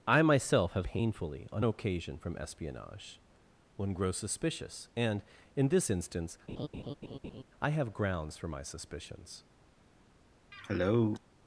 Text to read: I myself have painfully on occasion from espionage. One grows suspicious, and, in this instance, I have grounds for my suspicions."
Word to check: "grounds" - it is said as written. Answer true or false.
true